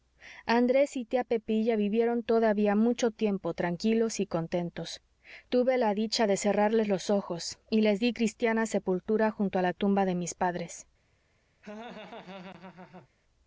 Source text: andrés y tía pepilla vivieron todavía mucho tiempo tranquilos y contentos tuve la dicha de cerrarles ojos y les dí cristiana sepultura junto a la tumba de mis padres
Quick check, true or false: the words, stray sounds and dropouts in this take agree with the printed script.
false